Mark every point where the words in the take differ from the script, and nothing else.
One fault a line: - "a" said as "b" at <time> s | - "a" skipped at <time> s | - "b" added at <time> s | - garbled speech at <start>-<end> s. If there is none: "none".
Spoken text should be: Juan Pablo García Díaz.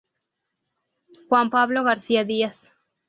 none